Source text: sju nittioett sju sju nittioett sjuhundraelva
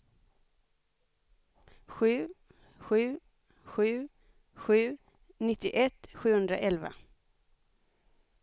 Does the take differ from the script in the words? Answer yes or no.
yes